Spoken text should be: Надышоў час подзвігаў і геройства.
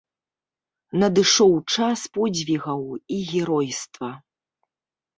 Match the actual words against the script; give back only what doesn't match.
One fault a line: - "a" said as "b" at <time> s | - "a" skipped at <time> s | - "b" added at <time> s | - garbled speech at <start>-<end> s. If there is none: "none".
none